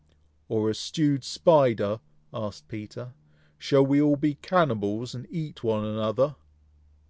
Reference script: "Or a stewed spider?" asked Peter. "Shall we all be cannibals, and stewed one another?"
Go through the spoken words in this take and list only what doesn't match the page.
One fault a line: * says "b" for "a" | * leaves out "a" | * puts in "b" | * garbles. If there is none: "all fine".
* says "eat" for "stewed"